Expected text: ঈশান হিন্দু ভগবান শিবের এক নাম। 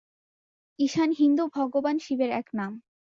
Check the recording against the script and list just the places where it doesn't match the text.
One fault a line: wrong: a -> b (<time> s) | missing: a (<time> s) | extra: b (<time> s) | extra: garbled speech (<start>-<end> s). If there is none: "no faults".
no faults